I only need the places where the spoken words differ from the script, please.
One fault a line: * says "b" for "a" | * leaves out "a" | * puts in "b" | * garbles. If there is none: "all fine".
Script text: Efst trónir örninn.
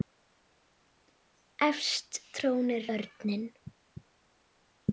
all fine